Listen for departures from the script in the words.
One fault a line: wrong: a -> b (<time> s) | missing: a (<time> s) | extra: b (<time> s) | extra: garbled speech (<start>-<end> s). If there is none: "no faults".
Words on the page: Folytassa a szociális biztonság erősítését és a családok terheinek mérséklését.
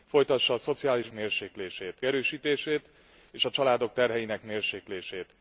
wrong: biztonság -> mérséklését (1.1 s)